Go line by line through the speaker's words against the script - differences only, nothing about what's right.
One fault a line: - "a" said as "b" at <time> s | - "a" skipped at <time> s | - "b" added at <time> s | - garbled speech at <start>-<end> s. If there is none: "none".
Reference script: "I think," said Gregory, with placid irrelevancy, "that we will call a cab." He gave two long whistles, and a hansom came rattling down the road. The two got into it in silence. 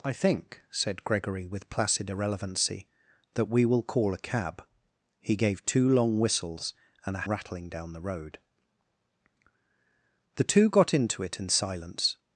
- "hansom came" skipped at 7.3 s